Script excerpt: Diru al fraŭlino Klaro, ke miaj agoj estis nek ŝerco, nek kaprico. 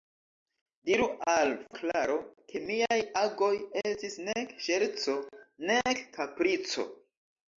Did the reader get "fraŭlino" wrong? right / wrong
wrong